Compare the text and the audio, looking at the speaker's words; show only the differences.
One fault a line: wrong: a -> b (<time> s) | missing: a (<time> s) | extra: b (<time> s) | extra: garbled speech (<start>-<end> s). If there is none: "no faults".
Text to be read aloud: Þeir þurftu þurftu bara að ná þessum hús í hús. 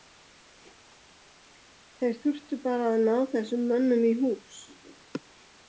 missing: þurftu (2.6 s)
wrong: hús -> mönnum (3.7 s)